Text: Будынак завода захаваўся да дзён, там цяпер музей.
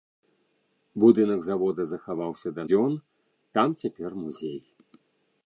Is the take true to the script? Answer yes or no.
yes